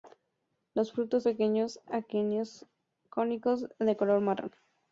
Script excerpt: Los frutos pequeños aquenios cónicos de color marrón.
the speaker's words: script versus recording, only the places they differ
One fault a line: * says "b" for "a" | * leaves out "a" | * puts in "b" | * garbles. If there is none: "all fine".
all fine